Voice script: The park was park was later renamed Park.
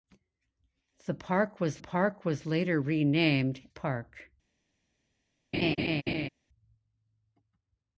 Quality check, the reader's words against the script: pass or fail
pass